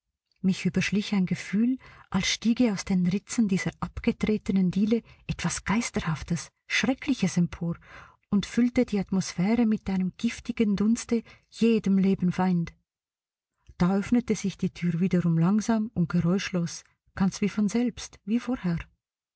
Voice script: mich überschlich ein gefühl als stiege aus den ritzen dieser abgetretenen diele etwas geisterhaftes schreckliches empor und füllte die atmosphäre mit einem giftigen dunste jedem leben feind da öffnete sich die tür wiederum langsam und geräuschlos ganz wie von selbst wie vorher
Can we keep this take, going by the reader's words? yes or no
yes